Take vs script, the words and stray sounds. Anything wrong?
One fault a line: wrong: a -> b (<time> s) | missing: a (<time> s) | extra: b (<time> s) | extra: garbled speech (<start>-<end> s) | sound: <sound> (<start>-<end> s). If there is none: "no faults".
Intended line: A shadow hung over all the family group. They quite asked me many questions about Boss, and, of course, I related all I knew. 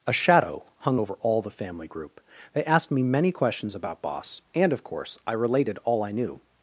missing: quite (2.6 s)